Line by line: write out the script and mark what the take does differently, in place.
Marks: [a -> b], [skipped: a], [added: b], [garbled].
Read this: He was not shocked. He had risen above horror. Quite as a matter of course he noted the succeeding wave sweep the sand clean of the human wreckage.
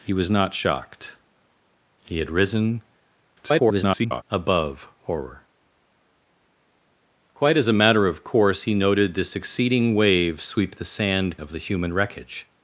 He was not shocked. He had risen [garbled] above horror. Quite as a matter of course he noted the succeeding wave sweep the sand [skipped: clean] of the human wreckage.